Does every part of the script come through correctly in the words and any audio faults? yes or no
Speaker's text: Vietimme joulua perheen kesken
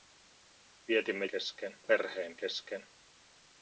no